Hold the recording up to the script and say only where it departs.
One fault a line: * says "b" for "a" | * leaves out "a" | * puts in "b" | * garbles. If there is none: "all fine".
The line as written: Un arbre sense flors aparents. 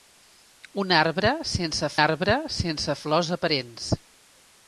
* puts in "arbre sense"